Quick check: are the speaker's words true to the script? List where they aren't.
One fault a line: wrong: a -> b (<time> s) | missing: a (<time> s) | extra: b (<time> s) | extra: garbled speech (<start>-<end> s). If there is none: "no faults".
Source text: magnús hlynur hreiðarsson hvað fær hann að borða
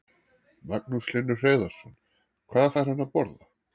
no faults